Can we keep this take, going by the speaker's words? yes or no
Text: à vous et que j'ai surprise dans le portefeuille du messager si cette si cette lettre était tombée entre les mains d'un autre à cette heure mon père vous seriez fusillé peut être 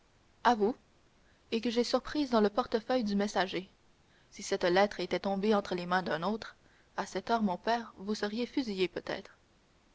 no